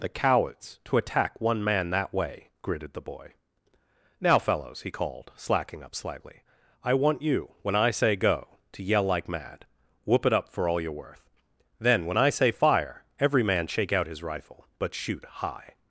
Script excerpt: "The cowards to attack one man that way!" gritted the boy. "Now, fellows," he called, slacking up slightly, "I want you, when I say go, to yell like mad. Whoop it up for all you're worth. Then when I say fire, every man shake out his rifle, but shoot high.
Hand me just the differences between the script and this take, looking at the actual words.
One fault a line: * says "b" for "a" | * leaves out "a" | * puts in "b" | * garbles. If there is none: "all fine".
all fine